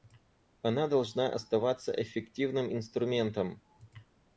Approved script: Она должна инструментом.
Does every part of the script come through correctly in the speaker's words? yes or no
no